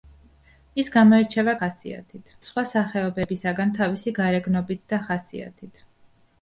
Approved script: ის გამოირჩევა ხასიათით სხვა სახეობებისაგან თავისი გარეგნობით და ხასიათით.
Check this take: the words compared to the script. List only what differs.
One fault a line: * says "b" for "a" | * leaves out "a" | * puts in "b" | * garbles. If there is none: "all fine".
all fine